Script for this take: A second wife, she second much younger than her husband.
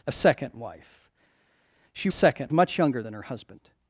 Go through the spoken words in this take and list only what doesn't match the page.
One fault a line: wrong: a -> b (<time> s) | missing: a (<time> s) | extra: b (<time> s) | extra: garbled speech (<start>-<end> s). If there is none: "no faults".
no faults